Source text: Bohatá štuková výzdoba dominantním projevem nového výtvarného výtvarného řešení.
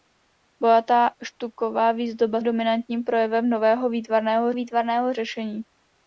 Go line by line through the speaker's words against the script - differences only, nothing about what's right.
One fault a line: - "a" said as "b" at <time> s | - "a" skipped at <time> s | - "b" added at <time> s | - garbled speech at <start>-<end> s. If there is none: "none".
none